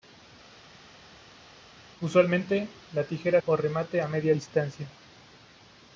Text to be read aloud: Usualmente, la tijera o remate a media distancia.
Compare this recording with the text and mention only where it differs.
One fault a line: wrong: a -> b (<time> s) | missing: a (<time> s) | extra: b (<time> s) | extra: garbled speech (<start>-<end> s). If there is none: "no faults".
no faults